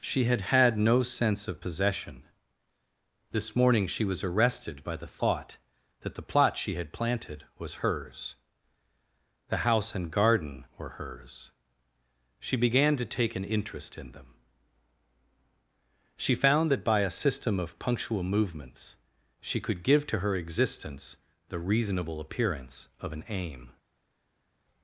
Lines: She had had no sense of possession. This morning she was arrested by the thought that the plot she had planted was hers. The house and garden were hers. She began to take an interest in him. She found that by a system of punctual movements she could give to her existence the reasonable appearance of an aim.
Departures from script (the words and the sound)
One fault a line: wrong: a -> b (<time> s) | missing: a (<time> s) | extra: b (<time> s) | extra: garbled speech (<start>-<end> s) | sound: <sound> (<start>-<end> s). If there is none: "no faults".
wrong: him -> them (14.1 s)